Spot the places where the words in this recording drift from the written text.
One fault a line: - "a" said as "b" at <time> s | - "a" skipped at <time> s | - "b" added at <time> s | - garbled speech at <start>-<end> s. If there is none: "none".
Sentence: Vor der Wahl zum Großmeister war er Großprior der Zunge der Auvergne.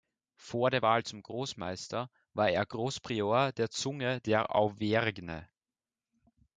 none